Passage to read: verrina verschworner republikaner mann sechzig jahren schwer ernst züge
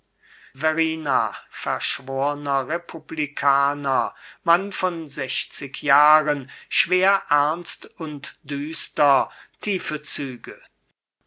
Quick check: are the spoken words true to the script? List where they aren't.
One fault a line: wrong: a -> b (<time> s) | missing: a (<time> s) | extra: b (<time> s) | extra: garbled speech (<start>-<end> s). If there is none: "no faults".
extra: von (4.7 s)
extra: und düster tiefe (8.0 s)